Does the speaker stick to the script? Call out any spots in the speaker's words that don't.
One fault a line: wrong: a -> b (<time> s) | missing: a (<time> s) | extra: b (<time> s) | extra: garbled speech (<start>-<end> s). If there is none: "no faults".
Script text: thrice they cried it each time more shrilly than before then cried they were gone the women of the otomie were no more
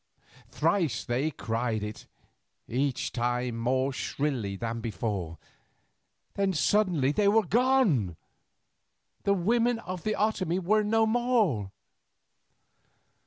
wrong: cried -> suddenly (6.5 s)